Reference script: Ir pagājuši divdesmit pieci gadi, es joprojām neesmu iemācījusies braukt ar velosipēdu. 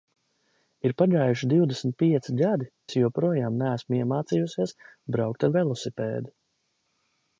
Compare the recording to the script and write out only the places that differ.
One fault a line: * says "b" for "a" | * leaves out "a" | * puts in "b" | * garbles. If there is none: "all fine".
all fine